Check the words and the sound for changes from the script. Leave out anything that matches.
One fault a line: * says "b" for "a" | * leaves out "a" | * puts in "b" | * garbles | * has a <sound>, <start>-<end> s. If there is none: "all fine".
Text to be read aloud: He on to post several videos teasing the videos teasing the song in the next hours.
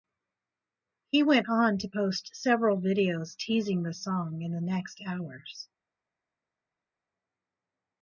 * puts in "went"
* leaves out "videos teasing the"